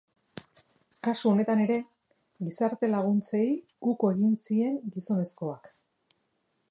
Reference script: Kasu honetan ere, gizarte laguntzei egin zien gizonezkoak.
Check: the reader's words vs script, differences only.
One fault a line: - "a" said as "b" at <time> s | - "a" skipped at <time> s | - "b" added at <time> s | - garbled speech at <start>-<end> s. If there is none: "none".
- "uko" added at 3.9 s